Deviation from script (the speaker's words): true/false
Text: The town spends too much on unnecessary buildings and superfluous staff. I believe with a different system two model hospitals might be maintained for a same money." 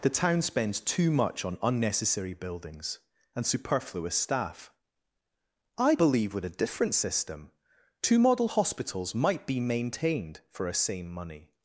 false